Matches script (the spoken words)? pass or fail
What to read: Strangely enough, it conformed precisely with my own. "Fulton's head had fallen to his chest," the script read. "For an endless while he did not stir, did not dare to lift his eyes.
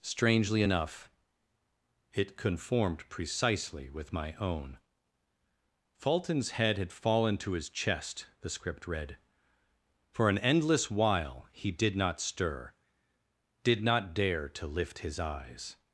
pass